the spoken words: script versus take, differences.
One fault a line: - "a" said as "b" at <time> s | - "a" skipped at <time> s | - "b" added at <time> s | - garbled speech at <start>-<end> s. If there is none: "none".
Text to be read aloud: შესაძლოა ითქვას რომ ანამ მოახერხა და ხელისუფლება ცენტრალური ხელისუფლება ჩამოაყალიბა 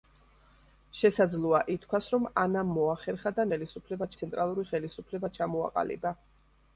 none